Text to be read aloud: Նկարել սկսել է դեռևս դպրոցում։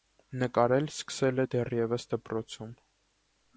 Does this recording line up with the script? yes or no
yes